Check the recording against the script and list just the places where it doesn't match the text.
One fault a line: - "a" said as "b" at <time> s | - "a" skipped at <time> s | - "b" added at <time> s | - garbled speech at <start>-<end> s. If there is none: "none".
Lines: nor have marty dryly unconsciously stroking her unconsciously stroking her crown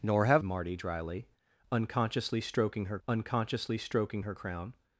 none